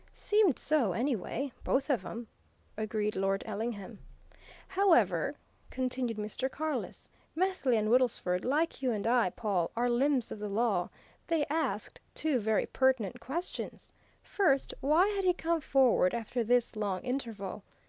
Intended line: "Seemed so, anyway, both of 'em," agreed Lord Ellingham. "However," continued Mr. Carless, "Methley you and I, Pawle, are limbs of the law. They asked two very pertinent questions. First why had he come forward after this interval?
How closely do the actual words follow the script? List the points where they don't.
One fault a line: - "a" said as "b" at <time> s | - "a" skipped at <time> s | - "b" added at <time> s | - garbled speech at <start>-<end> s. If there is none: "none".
- "and Woodlesford like" added at 7.7 s
- "long" added at 16.8 s